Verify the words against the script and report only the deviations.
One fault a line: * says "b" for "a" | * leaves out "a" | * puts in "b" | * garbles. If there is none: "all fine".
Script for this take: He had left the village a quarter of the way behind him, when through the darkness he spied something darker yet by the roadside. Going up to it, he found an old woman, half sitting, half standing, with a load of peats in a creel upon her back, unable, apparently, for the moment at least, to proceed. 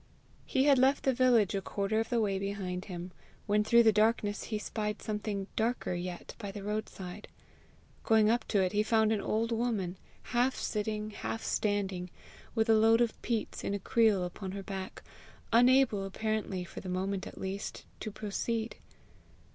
all fine